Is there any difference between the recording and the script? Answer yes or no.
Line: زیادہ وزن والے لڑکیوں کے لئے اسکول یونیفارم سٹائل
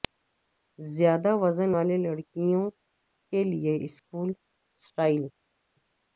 yes